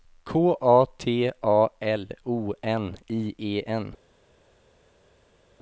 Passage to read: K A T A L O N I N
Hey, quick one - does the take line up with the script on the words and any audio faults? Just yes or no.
no